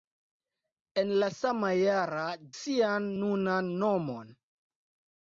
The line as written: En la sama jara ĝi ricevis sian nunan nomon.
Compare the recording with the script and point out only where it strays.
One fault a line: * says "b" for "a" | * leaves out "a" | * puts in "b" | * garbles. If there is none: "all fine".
* leaves out "ĝi ricevis"